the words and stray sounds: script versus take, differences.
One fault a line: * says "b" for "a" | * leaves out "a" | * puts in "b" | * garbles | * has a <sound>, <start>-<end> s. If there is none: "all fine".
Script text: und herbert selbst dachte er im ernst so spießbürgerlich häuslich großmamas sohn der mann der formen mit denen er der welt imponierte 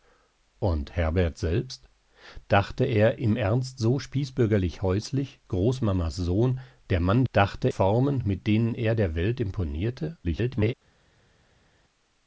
* says "dachte" for "der"
* garbles